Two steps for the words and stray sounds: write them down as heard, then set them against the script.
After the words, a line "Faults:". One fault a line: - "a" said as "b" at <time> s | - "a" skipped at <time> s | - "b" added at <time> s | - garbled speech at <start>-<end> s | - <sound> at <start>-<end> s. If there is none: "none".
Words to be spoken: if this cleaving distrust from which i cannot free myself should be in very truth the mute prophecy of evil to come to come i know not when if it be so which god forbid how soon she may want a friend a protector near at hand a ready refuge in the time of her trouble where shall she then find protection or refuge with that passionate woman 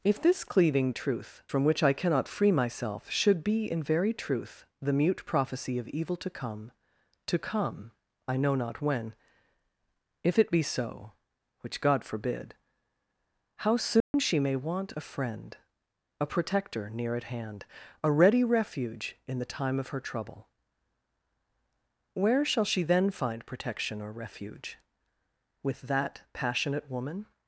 if this cleaving truth from which i cannot free myself should be in very truth the mute prophecy of evil to come to come i know not when if it be so which god forbid how soon she may want a friend a protector near at hand a ready refuge in the time of her trouble where shall she then find protection or refuge with that passionate woman
Faults:
- "distrust" said as "truth" at 0.9 s
- dropout at 14.0-14.1 s